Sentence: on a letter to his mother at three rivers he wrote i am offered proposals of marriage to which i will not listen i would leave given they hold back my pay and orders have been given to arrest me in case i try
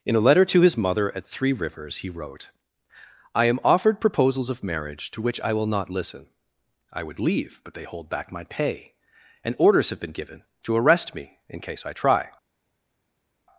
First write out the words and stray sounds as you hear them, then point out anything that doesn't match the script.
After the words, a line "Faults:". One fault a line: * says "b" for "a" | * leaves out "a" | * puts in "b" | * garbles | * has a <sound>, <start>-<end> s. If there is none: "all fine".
in a letter to his mother at three rivers he wrote i am offered proposals of marriage to which i will not listen i would leave but they hold back my pay and orders have been given to arrest me in case i try
Faults:
* says "in" for "on"
* says "but" for "given"